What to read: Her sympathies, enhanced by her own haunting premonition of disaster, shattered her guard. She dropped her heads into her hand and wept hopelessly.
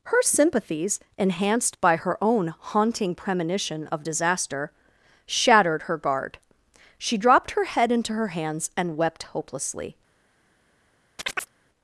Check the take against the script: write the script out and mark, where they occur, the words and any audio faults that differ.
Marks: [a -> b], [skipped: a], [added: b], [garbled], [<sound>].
Her sympathies, enhanced by her own haunting premonition of disaster, shattered her guard. She dropped her [heads -> head] into her [hand -> hands] and wept hopelessly. [chirp]